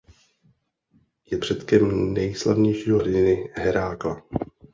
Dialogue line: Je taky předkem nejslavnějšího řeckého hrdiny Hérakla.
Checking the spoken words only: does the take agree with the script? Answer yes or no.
no